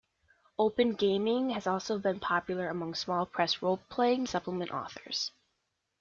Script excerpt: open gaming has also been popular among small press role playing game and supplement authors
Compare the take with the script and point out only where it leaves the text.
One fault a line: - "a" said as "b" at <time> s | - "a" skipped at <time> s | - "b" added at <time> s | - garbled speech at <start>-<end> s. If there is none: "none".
- "game and" skipped at 4.2 s